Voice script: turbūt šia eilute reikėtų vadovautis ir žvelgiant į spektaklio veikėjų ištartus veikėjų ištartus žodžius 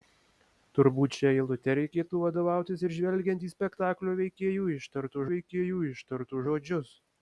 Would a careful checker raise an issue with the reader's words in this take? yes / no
no